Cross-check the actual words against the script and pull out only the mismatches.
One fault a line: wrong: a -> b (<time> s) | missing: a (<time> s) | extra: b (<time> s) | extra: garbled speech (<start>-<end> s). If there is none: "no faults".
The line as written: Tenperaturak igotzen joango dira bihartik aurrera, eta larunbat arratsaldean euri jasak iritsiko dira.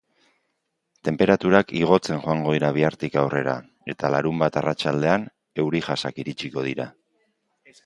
no faults